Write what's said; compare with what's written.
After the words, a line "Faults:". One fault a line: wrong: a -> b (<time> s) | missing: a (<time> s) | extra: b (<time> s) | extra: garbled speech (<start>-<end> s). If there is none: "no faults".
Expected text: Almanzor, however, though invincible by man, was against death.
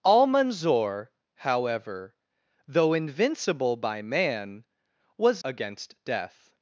Almanzor, however, though invincible by man, was against death.
Faults:
no faults